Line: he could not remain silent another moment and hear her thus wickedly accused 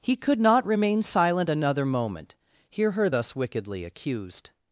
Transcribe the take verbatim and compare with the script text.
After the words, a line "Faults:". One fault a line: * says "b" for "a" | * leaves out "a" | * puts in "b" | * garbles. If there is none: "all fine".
he could not remain silent another moment hear her thus wickedly accused
Faults:
* leaves out "and"